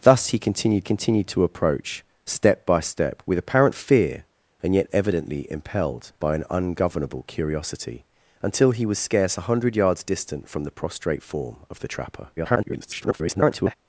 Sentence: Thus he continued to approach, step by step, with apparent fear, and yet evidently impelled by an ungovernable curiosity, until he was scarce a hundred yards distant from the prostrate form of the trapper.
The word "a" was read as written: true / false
true